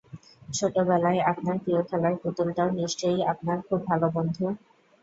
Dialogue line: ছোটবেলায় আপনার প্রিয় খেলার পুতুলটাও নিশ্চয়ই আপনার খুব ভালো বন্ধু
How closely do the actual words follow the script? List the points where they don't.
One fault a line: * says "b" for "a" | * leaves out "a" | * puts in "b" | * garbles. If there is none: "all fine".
all fine